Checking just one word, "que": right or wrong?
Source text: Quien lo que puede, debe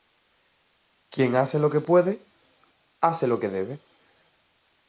right